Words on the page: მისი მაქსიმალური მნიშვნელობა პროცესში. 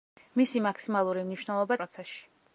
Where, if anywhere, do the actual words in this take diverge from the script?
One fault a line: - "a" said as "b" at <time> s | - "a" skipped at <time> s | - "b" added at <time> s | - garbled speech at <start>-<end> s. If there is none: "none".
none